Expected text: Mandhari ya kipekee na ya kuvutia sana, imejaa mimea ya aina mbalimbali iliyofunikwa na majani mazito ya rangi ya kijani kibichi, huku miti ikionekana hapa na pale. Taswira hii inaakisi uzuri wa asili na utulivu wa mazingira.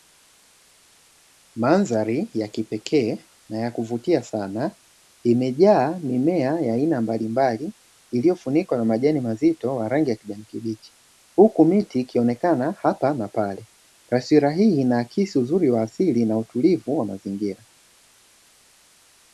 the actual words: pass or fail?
pass